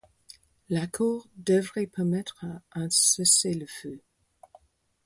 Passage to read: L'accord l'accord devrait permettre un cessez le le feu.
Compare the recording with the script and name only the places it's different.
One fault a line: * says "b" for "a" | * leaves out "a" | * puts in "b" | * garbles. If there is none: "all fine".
* leaves out "l'accord"
* leaves out "le"